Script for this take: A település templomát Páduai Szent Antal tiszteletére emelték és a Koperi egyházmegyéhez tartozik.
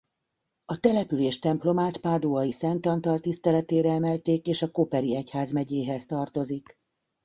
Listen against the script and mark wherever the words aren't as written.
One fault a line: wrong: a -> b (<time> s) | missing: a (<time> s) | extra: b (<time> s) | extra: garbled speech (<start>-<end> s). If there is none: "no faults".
no faults